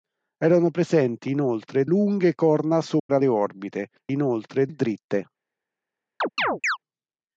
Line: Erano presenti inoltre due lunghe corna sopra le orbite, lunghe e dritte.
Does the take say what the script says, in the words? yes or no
no